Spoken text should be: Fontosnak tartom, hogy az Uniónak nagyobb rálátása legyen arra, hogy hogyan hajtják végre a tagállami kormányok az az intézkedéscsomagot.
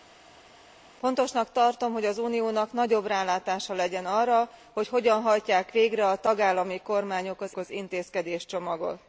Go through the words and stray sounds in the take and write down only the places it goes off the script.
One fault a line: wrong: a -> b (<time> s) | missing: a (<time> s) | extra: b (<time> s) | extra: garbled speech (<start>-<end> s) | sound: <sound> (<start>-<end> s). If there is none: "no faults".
no faults